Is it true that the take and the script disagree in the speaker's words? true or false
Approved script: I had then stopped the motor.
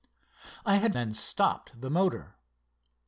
false